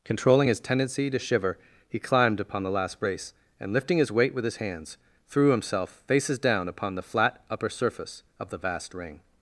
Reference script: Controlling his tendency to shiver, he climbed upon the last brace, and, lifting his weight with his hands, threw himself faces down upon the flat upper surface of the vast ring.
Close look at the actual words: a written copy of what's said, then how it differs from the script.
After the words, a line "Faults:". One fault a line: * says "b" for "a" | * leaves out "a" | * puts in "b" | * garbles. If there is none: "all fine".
Controlling his tendency to shiver, he climbed upon the last brace, and, lifting his weight with his hands, threw himself faces down upon the flat upper surface of the vast ring.
Faults:
all fine